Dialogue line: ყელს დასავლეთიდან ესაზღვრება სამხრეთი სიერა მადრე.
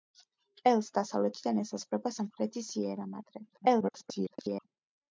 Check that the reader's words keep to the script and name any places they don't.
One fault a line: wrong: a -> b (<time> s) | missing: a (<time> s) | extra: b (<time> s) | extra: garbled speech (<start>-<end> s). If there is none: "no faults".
extra: garbled speech (3.5-4.7 s)